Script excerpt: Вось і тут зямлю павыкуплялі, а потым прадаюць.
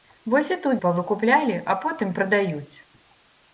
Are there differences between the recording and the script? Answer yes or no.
yes